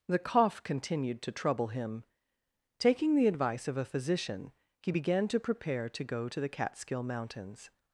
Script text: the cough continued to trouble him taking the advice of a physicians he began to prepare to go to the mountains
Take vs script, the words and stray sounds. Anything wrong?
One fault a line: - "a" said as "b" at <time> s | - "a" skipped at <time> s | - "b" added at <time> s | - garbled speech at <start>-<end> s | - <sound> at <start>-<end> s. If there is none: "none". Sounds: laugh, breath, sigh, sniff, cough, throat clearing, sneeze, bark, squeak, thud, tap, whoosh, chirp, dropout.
- "physicians" said as "physician" at 3.8 s
- "catskill" added at 6.5 s